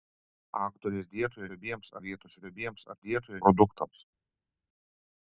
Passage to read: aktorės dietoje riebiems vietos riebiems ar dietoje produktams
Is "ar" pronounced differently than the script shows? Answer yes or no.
no